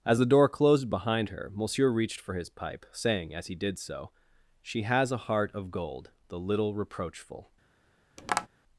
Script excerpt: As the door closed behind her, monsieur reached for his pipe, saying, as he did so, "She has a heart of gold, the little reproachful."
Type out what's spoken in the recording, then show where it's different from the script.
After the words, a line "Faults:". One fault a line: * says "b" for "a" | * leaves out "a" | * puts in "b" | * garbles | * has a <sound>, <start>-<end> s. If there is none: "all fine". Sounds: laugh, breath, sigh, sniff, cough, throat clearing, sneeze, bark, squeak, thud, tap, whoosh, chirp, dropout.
As the door closed behind her, monsieur reached for his pipe, saying, as he did so, "She has a heart of gold, the little reproachful."
Faults:
* has a tap, 8.2-8.5 s